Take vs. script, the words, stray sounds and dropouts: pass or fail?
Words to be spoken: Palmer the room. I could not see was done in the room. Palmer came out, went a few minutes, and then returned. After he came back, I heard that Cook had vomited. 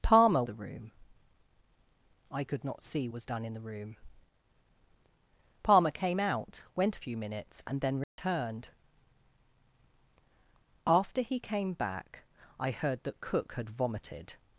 fail